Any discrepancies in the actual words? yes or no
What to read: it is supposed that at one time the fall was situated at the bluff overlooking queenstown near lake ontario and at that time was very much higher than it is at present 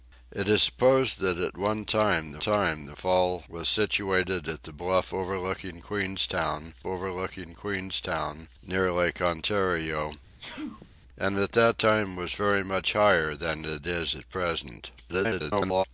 yes